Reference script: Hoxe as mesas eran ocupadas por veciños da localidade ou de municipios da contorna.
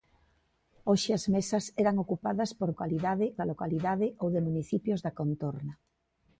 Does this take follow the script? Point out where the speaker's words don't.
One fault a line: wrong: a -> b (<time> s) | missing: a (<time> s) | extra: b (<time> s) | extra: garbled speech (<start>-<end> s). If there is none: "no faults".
wrong: veciños -> localidade (2.7 s)